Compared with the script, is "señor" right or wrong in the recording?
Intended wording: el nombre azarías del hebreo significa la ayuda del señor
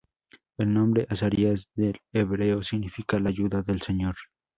right